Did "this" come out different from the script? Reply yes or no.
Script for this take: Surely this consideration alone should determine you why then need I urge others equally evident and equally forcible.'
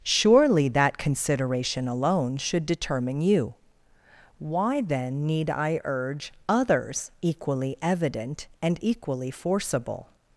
yes